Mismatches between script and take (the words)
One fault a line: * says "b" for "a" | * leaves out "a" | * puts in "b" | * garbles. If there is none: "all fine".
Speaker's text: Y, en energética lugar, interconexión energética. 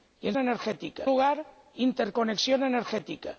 all fine